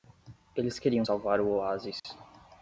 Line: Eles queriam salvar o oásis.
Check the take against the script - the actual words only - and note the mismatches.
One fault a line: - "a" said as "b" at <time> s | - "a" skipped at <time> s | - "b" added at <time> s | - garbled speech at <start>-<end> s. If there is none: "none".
none